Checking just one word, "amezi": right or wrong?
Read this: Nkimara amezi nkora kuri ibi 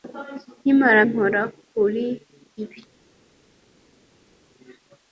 wrong